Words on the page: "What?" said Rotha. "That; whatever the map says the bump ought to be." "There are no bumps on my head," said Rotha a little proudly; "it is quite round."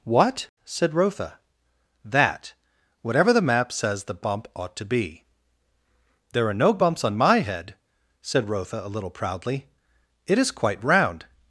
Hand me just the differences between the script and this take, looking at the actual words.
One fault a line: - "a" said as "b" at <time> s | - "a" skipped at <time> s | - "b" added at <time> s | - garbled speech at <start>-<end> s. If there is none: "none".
none